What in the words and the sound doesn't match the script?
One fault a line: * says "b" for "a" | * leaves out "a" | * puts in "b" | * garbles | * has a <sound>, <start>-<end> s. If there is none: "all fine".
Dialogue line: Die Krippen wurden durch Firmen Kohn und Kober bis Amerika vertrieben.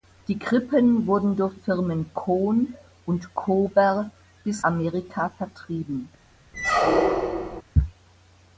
* has a squeak, 6.5-7.6 s